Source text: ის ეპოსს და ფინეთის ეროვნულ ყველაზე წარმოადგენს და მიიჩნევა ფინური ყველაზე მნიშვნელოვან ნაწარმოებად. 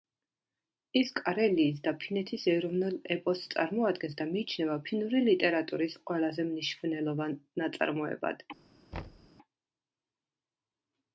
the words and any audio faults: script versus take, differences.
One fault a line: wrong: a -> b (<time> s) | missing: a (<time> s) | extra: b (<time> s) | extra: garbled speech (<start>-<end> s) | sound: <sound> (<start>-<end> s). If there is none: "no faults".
wrong: ეპოსს -> კარელიის (1.2 s)
wrong: ყველაზე -> ეპოსს (3.2 s)
extra: ლიტერატურის (5.3 s)
sound: thud (8.9-9.3 s)